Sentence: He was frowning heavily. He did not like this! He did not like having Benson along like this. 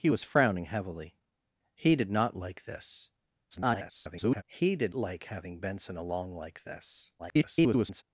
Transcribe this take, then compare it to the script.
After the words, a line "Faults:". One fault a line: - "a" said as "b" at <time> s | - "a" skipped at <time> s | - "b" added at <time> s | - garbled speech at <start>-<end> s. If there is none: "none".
He was frowning heavily. He did not like this! [garbled] He did like having Benson along like this. [garbled]
Faults:
- garbled speech at 3.5-4.4 s
- "not" skipped at 4.9 s
- garbled speech at 7.2-8.0 s